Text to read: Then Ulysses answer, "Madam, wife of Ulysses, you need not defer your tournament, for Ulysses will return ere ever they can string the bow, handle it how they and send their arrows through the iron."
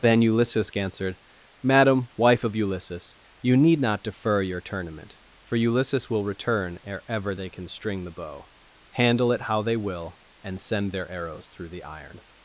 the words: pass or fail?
fail